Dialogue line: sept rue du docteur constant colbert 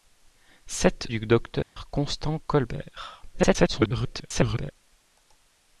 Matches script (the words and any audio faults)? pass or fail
fail